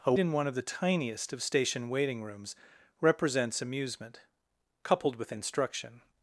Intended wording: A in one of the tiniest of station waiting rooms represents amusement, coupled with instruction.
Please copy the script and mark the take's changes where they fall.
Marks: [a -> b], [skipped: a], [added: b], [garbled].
A in one of the tiniest of station waiting rooms represents amusement, coupled with instruction.